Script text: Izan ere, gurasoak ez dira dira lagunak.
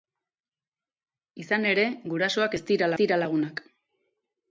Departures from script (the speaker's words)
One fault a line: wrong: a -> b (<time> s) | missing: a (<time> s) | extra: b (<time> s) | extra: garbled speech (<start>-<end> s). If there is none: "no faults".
no faults